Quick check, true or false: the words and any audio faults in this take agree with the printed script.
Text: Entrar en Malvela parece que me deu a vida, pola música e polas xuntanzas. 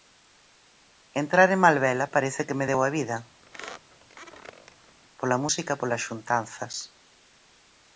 false